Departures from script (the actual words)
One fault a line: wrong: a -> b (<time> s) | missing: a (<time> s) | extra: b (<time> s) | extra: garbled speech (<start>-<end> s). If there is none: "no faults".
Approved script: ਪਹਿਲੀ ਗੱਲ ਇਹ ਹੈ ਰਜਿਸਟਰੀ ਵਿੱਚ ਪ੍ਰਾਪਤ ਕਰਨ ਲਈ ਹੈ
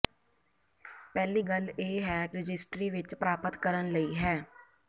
no faults